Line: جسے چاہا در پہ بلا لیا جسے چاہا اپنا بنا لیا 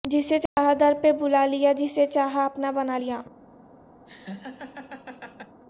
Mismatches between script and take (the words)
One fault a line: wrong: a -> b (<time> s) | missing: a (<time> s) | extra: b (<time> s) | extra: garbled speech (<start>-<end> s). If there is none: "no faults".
no faults